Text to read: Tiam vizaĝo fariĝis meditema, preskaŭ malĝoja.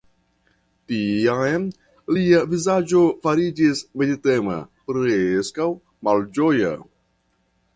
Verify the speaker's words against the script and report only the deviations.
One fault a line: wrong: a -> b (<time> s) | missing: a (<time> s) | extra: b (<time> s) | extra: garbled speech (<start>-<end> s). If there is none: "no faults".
extra: lia (2.2 s)